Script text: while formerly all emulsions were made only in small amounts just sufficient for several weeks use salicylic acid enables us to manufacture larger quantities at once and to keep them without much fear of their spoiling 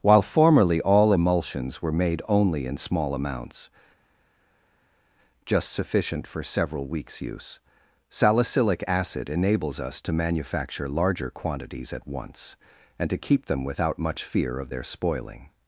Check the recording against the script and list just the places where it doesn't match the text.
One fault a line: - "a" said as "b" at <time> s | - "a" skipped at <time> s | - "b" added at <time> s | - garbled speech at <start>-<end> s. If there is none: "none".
none